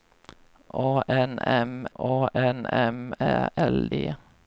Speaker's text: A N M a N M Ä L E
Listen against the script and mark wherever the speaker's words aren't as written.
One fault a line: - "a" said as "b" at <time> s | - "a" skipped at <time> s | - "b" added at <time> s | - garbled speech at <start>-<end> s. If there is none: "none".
none